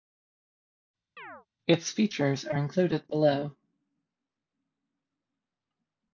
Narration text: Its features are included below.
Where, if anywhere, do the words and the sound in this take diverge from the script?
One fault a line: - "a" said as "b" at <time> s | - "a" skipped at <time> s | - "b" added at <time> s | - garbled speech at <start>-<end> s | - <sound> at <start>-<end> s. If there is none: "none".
- chirp at 1.2-1.5 s